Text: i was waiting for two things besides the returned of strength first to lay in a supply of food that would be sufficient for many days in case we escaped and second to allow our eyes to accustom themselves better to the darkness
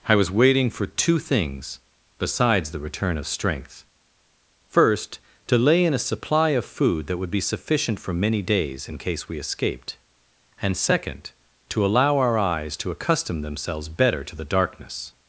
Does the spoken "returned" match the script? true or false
false